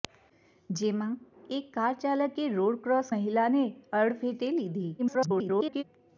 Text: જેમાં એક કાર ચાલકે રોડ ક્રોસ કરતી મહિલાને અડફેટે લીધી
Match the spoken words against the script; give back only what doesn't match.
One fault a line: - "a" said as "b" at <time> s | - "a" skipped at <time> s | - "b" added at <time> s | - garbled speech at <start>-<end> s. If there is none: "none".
- "કરતી" skipped at 3.1 s
- garbled speech at 5.0-5.8 s